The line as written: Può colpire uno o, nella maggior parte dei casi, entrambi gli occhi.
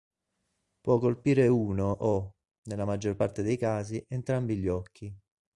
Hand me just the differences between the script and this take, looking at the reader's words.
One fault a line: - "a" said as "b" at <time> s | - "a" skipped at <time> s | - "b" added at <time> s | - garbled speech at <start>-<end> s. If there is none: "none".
none